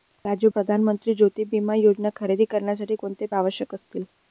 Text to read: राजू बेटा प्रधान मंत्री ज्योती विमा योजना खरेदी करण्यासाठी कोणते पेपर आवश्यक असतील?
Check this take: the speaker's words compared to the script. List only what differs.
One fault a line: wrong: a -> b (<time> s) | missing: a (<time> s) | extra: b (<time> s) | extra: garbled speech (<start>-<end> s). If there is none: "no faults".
missing: बेटा (0.5 s)
missing: पेपर (3.3 s)